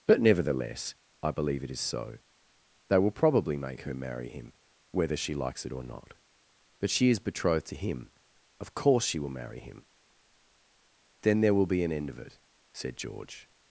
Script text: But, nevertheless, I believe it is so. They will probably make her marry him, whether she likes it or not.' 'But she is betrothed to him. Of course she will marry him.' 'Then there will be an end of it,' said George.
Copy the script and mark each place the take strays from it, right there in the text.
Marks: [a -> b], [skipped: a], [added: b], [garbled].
But, nevertheless, I believe it is so. They will probably make her marry him, whether she likes it or not.' 'But she is betrothed to him. Of course she will marry him.' 'Then there will be an end of it,' said George.